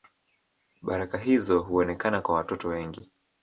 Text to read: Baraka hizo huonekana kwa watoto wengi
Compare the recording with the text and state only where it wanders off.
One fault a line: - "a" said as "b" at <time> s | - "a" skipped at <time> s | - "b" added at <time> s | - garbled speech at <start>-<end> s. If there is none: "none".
none